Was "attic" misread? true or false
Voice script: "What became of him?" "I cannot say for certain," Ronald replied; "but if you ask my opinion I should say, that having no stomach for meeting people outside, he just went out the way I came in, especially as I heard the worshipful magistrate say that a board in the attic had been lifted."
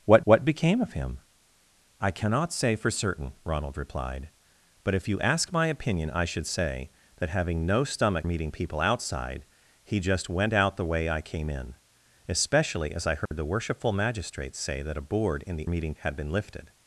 true